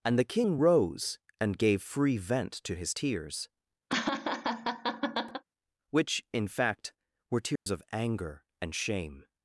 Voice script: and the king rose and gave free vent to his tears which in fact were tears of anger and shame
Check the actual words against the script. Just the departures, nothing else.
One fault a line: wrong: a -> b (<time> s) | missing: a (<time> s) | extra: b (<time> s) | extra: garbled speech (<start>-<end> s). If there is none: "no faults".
no faults